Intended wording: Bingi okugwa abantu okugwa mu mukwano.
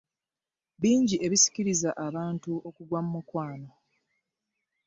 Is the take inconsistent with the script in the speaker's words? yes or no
yes